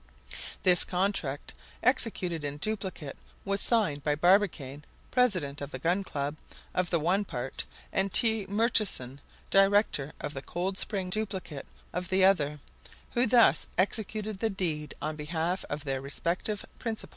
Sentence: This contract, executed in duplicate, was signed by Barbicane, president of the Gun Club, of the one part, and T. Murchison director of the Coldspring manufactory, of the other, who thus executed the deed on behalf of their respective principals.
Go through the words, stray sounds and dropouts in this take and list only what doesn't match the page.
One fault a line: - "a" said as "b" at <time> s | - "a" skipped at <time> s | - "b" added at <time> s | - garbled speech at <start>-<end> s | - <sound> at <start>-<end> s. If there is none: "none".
- "manufactory" said as "duplicate" at 11.1 s